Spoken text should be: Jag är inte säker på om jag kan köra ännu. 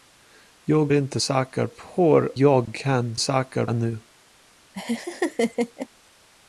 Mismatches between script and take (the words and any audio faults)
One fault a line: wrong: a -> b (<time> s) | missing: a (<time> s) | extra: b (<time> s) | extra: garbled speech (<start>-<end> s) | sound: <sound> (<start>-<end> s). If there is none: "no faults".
missing: är (0.9 s)
missing: om (2.3 s)
wrong: köra -> säker (3.2 s)
sound: laugh (4.7-5.9 s)